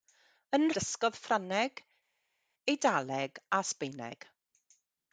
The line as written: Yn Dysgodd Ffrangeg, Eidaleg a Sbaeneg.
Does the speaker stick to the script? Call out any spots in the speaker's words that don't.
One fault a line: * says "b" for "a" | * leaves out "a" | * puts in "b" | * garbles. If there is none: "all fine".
all fine